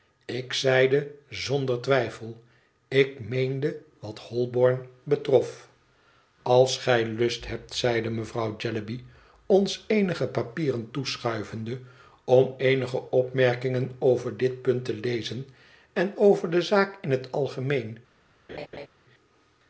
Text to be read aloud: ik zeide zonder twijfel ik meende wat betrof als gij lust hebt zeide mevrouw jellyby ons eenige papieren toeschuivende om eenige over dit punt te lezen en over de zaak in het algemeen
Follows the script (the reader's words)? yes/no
no